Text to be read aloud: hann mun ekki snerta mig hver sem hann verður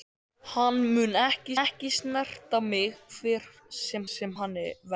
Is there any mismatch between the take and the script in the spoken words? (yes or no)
yes